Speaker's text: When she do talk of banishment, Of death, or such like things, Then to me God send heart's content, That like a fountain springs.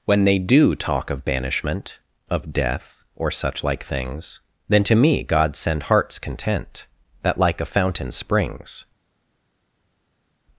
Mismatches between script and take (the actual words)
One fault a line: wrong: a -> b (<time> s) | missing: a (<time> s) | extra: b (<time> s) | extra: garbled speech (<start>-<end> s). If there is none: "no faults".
wrong: she -> they (0.2 s)